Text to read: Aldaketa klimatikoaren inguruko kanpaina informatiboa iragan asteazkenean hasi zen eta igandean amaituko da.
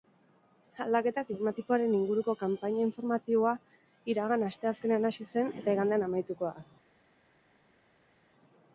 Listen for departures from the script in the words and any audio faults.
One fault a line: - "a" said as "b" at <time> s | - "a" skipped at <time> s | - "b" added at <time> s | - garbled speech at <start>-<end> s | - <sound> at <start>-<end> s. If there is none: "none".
none